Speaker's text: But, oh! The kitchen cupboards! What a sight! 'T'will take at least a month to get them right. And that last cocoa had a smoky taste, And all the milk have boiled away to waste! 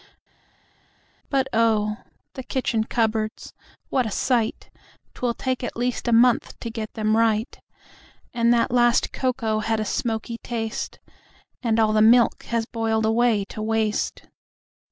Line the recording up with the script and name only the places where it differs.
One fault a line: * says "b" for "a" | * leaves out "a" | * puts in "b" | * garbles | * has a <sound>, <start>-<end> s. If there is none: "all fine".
* says "has" for "have"